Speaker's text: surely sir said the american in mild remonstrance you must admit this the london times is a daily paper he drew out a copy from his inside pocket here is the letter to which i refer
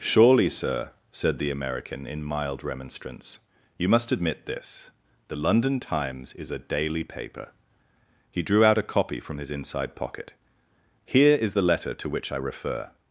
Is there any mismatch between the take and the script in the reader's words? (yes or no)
no